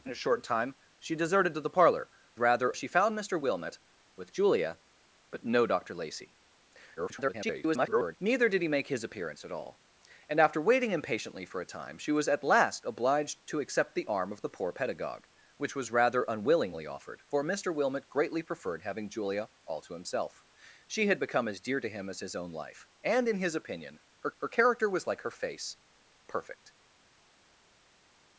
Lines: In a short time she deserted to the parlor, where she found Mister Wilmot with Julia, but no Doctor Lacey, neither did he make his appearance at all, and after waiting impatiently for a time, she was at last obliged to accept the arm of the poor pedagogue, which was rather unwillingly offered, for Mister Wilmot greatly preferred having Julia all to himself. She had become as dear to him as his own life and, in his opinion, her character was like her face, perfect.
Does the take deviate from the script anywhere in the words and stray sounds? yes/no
yes